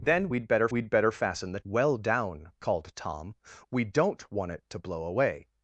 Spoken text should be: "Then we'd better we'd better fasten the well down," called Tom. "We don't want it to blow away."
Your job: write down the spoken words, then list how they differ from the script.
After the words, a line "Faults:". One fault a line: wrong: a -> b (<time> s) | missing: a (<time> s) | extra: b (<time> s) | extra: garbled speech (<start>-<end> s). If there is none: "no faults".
"Then we'd better we'd better fasten the well down," called Tom. "We don't want it to blow away."
Faults:
no faults